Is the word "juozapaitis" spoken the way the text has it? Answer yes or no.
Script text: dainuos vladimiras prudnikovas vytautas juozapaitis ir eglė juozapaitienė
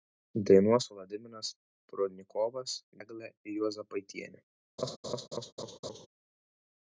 no